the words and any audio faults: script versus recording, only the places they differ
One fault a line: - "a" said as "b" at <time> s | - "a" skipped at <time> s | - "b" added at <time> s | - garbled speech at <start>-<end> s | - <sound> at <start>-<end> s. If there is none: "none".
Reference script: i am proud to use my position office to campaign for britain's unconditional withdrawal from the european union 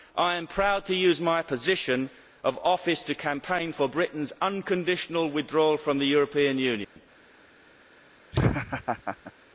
- "of" added at 2.4 s
- dropout at 6.8-7.0 s
- laugh at 8.3-9.3 s